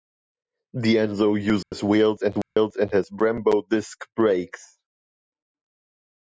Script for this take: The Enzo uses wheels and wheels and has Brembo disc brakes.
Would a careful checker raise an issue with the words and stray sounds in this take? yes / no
yes